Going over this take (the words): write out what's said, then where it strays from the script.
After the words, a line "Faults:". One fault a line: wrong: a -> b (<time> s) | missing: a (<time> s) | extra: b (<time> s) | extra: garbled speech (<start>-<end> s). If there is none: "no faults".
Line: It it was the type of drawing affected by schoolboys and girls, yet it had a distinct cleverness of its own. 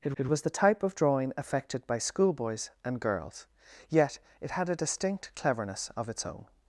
It it was the type of drawing affected by schoolboys and girls, yet it had a distinct cleverness of its own.
Faults:
no faults